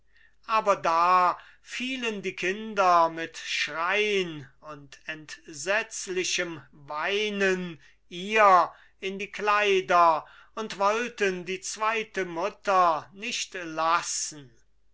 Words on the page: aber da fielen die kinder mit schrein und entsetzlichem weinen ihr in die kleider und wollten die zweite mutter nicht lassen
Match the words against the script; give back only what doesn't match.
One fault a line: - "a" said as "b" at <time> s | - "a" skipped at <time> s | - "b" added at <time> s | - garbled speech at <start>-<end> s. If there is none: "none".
none